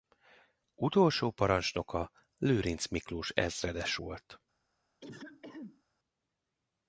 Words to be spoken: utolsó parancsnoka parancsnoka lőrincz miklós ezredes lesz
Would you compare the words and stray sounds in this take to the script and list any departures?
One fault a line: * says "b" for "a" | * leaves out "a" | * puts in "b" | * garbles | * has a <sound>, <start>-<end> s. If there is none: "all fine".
* leaves out "parancsnoka"
* says "volt" for "lesz"
* has a throat clearing, 5.0-5.8 s